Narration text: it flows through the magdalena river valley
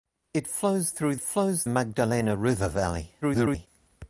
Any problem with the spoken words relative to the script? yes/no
yes